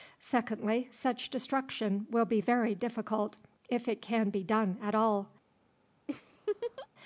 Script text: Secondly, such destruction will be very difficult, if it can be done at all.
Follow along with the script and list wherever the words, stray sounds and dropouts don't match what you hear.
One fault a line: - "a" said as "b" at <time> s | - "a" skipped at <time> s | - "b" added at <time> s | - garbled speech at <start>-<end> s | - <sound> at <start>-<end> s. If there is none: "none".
- laugh at 6.1-6.9 s